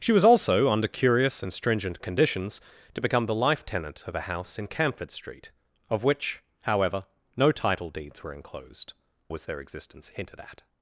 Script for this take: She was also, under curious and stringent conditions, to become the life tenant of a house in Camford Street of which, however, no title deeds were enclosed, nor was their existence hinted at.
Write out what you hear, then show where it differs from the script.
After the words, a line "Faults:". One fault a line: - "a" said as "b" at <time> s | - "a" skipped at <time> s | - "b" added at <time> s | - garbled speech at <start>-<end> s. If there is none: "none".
She was also, under curious and stringent conditions, to become the life tenant of a house in Camford Street of which, however, no title deeds were enclosed, was their existence hinted at.
Faults:
- "nor" skipped at 8.9 s